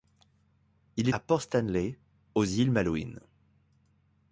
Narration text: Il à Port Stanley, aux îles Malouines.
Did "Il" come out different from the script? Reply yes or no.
no